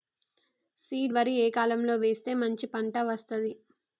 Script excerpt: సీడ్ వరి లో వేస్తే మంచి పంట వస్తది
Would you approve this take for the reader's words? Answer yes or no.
no